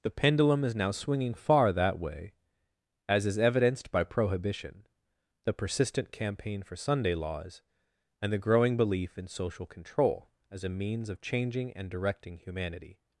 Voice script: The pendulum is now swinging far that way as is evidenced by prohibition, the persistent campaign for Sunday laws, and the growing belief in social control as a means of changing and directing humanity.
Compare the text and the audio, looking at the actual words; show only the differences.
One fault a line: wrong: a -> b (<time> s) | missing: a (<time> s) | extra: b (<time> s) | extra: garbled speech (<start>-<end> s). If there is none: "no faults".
no faults